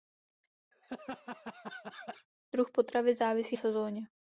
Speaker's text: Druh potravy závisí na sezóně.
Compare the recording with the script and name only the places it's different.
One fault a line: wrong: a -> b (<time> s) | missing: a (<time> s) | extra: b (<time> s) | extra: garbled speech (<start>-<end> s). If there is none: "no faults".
missing: na (3.6 s)